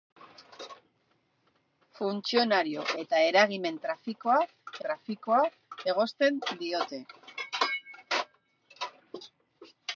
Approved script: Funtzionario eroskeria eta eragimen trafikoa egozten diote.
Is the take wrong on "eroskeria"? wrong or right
wrong